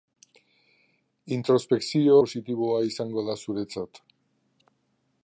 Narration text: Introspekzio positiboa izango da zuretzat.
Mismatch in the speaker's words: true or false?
false